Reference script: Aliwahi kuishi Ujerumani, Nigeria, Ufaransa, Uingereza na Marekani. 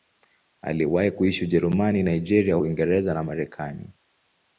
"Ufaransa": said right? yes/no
no